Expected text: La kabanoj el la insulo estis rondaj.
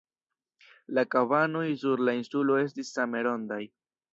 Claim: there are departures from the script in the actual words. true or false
true